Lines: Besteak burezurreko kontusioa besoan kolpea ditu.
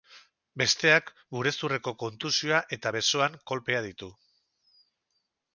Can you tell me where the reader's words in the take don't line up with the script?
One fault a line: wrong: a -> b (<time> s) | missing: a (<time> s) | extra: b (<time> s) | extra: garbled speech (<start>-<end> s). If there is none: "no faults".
extra: eta (2.8 s)